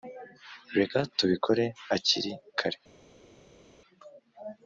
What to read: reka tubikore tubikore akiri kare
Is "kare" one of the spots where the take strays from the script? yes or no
no